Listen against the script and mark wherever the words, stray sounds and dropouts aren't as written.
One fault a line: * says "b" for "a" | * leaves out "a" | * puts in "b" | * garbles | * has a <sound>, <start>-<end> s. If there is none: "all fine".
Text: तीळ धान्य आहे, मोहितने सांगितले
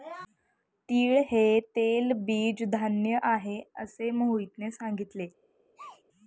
* puts in "हे तेलबीज"
* puts in "असे"
* has a sneeze, 5.8-6.0 s